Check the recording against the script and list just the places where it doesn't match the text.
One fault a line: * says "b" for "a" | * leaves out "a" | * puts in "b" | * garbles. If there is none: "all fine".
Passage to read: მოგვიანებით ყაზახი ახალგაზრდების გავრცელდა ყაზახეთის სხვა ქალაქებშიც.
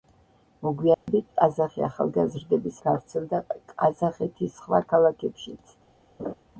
all fine